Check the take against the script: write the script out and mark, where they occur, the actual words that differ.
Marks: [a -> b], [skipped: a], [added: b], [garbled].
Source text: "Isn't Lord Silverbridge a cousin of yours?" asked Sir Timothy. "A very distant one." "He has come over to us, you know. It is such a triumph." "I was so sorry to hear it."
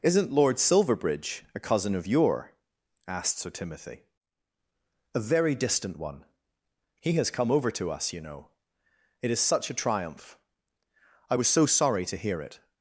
"Isn't Lord Silverbridge a cousin of [yours?" -> your] asked Sir Timothy. "A very distant one." "He has come over to us, you know. It is such a triumph." "I was so sorry to hear it."